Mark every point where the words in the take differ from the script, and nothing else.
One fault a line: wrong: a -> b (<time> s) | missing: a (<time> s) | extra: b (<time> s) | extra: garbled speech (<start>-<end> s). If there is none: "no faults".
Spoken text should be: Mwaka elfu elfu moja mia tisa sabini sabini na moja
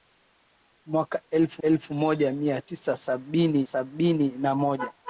no faults